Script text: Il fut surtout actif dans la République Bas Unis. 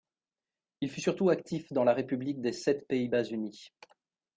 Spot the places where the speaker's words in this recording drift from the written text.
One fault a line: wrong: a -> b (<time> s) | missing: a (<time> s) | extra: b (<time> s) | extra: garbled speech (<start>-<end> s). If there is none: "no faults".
extra: des Sept Pays (2.4 s)